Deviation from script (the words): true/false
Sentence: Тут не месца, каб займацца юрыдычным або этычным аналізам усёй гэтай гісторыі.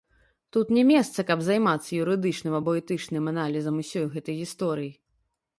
false